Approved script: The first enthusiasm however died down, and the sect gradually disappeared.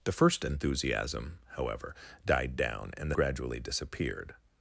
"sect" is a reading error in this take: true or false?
true